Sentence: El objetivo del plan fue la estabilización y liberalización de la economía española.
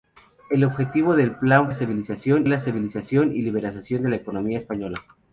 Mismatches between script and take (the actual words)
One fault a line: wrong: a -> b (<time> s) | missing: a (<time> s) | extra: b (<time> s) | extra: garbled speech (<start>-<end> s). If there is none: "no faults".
wrong: fue -> estabilización (1.7 s)